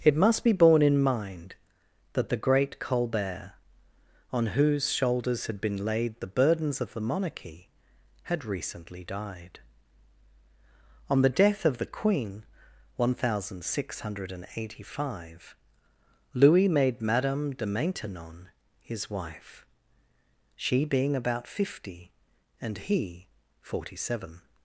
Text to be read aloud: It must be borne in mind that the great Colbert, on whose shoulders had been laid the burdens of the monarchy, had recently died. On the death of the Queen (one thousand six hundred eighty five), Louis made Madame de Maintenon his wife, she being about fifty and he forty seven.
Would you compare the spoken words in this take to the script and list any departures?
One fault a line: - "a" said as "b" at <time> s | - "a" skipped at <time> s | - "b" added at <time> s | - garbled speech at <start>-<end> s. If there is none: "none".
none